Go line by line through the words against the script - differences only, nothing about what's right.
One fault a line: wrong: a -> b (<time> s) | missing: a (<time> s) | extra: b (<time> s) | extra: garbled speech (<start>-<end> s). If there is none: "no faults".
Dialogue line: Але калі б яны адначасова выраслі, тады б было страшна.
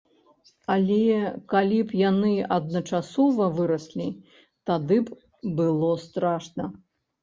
no faults